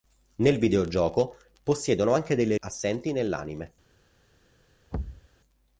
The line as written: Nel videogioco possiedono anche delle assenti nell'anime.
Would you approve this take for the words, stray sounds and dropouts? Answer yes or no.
no